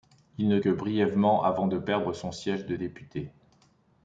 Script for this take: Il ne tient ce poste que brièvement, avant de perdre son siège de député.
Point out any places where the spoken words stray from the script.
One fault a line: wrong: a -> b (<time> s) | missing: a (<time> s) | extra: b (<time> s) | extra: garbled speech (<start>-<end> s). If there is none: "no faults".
missing: tient ce poste (0.6 s)